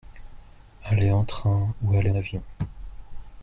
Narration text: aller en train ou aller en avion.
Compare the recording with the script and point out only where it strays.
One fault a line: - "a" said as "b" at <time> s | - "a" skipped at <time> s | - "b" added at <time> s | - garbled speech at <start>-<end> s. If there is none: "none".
- "en" skipped at 2.1 s